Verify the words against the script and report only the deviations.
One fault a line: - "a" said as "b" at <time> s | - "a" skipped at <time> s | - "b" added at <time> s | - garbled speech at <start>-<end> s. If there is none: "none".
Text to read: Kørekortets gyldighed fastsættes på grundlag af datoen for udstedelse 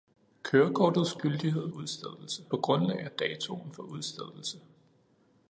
- "fastsættes" said as "udstedelse" at 1.7 s